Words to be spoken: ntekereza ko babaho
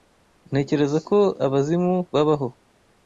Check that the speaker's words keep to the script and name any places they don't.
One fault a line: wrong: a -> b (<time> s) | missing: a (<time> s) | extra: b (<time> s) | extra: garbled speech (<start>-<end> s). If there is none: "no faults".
extra: abazimu (1.5 s)